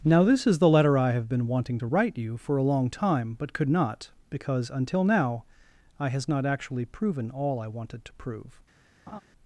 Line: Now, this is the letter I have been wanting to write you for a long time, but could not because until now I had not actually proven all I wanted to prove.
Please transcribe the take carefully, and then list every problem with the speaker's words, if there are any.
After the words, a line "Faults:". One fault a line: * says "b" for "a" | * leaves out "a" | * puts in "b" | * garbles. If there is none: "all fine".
Now, this is the letter I have been wanting to write you for a long time, but could not because until now I has not actually proven all I wanted to prove.
Faults:
* says "has" for "had"